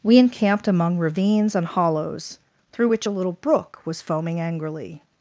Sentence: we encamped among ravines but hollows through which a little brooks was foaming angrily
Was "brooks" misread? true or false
true